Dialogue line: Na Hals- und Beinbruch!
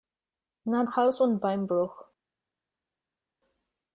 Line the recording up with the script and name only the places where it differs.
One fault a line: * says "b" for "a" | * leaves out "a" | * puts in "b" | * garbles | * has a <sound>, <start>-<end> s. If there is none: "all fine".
all fine